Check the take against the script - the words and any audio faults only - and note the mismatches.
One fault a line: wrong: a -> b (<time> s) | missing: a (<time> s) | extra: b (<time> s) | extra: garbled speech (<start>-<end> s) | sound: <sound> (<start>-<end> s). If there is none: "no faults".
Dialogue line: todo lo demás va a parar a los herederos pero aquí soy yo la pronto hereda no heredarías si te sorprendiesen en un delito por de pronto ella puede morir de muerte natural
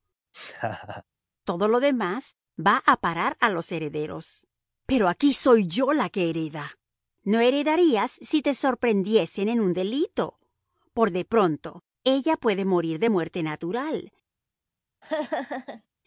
sound: laugh (0.3-1.0 s)
wrong: pronto -> que (6.1 s)
sound: laugh (15.0-15.9 s)